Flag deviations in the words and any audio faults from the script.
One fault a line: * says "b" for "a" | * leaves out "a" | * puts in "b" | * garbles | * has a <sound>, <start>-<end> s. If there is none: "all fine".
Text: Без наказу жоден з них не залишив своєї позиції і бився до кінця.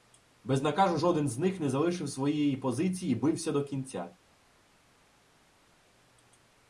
all fine